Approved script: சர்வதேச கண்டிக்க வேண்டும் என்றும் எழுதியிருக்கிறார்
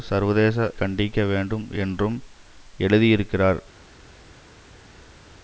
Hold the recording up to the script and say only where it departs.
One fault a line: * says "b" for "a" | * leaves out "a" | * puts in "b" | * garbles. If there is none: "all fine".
all fine